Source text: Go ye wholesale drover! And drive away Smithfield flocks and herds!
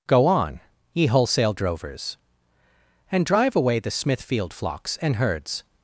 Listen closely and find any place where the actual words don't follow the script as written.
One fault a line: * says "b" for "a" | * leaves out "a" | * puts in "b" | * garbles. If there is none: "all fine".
* puts in "on"
* says "drovers" for "drover"
* puts in "the"